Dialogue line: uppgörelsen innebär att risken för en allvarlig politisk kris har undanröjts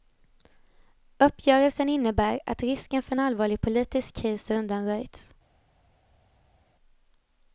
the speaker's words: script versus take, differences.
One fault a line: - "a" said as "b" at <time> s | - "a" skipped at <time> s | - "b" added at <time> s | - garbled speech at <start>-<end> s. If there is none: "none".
none